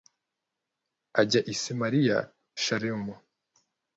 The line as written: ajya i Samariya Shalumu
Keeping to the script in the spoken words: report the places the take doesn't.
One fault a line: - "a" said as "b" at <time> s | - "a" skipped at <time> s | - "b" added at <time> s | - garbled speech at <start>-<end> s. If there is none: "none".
none